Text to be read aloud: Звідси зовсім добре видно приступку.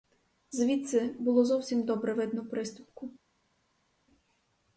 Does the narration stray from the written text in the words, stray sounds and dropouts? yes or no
yes